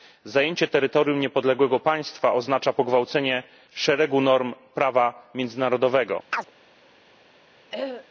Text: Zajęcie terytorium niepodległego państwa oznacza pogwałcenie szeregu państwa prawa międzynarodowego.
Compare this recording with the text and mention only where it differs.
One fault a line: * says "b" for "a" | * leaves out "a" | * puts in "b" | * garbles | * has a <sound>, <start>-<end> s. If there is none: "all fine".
* says "norm" for "państwa"
* has a chirp, 6.3-6.5 s
* has a throat clearing, 7.7-8.1 s